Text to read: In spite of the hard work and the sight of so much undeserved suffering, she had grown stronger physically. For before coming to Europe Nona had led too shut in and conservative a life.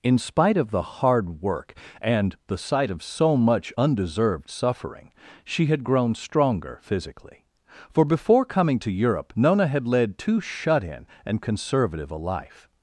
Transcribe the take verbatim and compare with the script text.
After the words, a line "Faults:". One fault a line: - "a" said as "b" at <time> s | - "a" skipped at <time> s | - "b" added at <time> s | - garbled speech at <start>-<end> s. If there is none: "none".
In spite of the hard work and the sight of so much undeserved suffering, she had grown stronger physically. For before coming to Europe Nona had led too shut in and conservative a life.
Faults:
none